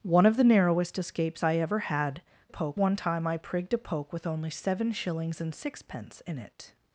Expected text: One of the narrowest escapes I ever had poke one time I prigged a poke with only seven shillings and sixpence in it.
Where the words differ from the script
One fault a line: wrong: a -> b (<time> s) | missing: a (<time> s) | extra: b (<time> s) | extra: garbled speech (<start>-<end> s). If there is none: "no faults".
no faults